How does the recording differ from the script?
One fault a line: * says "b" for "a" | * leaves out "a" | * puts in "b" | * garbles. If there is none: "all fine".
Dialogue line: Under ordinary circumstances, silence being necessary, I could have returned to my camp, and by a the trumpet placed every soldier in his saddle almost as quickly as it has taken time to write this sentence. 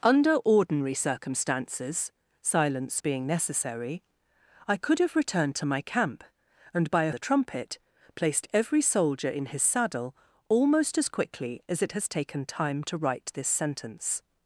all fine